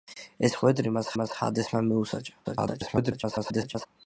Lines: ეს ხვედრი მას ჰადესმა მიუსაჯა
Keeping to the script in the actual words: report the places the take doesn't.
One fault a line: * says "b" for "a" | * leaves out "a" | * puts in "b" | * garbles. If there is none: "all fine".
* puts in "მას"
* garbles